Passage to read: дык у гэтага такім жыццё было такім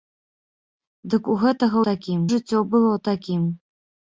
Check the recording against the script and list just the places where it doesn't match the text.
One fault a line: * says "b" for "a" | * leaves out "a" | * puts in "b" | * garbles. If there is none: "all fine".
all fine